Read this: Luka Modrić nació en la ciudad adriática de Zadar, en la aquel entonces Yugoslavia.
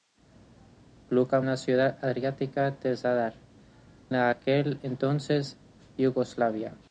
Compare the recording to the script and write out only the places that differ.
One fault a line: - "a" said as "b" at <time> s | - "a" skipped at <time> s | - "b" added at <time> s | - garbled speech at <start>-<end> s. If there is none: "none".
- "Modrić nació" skipped at 1.4 s
- "en" skipped at 3.3 s